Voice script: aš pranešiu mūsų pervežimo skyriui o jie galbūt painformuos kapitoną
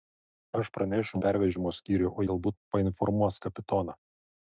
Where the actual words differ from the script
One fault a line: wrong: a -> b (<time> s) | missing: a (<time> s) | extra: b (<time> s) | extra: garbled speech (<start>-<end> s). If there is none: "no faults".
missing: mūsų (1.2 s)
missing: jie (2.3 s)